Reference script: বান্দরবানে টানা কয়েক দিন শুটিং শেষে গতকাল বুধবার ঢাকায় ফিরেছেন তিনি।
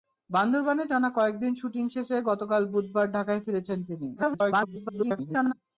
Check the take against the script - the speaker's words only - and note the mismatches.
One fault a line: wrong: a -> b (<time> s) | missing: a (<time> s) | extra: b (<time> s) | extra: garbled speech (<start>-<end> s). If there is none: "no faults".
extra: garbled speech (4.2-5.5 s)